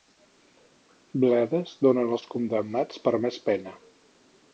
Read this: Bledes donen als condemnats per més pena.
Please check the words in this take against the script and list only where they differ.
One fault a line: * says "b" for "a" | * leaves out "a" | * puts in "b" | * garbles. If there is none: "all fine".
all fine